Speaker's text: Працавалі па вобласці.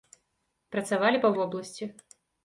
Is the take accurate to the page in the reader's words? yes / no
yes